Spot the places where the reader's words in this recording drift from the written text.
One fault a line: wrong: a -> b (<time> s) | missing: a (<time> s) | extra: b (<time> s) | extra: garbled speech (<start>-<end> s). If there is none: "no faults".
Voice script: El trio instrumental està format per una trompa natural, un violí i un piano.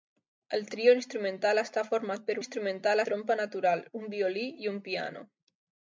wrong: una -> instrumental (2.4 s)